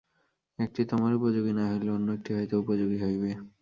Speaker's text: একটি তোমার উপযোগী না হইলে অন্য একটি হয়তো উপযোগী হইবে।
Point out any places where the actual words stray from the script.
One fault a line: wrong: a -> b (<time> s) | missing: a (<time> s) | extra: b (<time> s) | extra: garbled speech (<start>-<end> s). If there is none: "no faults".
no faults